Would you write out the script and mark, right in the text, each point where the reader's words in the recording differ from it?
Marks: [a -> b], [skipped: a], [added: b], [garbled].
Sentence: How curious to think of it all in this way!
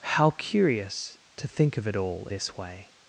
How curious to think of it all [skipped: in] this way!